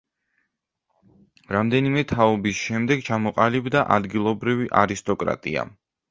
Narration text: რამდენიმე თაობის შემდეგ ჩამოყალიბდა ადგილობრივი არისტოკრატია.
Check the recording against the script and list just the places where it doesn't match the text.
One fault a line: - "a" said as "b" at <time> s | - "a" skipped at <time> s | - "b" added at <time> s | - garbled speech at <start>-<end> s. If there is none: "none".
none